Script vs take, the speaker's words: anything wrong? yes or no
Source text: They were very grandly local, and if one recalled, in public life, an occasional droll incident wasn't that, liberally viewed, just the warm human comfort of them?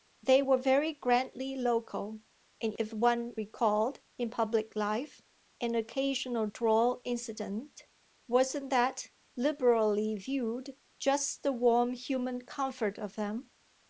no